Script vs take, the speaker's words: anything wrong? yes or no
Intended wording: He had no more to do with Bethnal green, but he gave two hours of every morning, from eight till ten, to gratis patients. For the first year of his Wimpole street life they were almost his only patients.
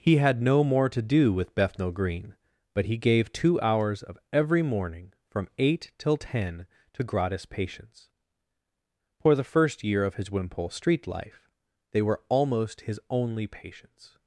no